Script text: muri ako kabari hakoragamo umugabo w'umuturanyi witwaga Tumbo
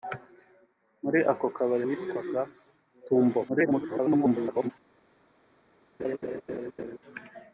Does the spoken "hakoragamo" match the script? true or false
false